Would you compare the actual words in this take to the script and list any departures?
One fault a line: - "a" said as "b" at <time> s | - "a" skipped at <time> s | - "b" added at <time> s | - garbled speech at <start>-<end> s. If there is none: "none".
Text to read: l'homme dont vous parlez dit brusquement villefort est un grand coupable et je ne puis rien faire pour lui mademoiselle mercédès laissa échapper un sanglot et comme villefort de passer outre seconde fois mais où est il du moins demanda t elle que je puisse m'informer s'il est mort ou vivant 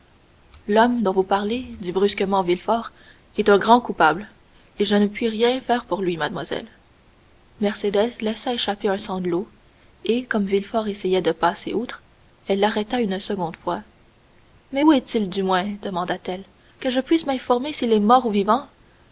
- "essayait" added at 10.9 s
- "elle l'arrêta une" added at 12.5 s